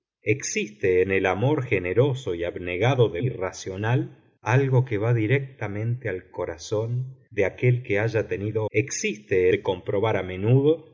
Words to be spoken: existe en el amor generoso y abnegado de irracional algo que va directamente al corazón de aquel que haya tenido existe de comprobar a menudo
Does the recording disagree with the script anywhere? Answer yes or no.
no